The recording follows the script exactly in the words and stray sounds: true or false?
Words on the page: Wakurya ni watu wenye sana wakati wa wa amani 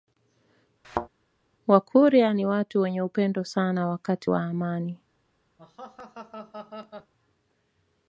false